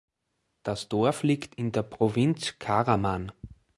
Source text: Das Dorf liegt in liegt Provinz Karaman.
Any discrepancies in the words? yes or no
yes